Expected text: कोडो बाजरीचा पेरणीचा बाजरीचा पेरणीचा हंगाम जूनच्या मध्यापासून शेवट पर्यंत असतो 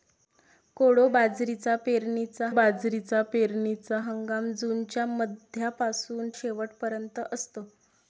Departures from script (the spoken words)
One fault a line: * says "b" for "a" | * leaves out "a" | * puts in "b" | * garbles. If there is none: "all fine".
all fine